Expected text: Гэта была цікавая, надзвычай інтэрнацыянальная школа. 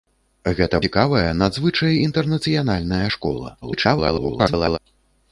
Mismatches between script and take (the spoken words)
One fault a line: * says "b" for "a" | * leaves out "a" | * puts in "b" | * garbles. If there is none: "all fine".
* leaves out "была"
* garbles